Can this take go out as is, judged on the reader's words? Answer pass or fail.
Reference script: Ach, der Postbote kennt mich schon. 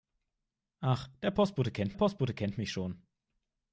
fail